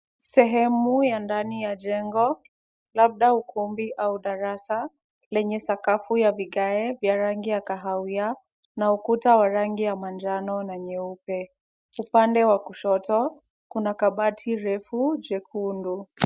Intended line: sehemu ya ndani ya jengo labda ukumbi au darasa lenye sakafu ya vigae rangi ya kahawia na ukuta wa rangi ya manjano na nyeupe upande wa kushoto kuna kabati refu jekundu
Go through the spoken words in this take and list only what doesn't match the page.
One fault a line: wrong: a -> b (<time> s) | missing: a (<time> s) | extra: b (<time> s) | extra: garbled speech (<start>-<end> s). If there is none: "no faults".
extra: vya (6.9 s)